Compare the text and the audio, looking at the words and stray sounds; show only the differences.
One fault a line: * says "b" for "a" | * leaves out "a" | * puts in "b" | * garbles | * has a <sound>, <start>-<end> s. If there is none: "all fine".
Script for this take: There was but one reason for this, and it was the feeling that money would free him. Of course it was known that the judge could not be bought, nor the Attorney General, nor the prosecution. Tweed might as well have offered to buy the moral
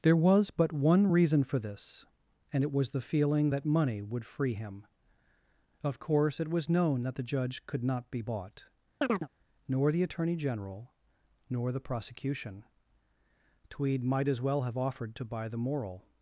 * has a chirp, 9.0-9.3 s